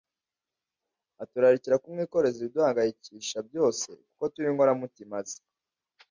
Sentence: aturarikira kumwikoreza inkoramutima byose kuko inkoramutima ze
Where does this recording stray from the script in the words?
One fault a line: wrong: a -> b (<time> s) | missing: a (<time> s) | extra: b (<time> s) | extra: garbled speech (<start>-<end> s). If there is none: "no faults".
wrong: inkoramutima -> ibiduhangayikisha (2.4 s)
extra: turi (4.3 s)